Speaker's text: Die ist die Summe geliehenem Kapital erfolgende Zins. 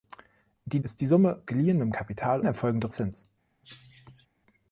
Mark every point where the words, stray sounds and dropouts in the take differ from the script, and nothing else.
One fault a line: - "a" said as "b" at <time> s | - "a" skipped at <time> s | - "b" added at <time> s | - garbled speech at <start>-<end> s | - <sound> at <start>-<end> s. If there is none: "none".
- cough at 3.6-4.3 s